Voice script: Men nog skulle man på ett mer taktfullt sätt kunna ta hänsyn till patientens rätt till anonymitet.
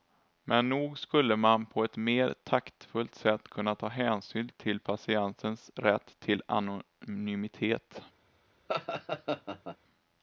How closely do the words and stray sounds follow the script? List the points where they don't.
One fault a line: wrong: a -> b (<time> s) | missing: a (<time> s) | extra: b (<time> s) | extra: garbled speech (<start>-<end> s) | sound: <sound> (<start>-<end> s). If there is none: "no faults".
sound: laugh (8.7-9.8 s)